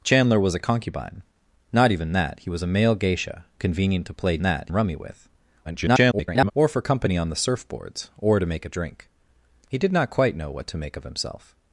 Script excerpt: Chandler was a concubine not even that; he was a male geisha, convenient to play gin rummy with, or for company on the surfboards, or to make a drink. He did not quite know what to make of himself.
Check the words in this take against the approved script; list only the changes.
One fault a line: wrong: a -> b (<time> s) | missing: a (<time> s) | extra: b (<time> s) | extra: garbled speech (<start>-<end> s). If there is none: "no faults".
wrong: gin -> that (4.4 s)
extra: garbled speech (5.6-6.5 s)